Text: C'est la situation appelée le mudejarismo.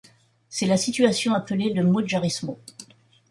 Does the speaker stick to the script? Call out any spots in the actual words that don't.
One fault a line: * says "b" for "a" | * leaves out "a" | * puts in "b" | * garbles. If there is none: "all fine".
all fine